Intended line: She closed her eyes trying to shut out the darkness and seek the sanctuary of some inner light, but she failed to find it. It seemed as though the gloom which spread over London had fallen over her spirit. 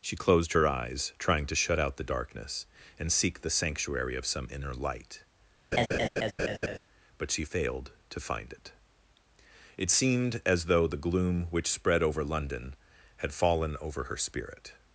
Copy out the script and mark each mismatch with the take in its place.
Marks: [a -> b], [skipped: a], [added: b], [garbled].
She closed her eyes trying to shut out the darkness and seek the sanctuary of some inner light, but she failed to find it. It seemed as though the gloom which spread over London had fallen over her spirit.